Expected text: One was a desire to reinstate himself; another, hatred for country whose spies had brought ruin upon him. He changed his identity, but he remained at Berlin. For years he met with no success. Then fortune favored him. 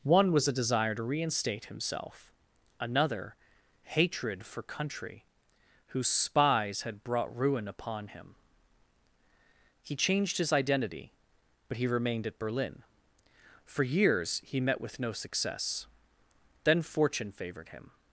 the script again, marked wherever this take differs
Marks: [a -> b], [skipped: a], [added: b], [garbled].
One was a desire to reinstate himself; another, hatred for country whose spies had brought ruin upon him. He changed his identity, but he remained at Berlin. For years he met with no success. Then fortune favored him.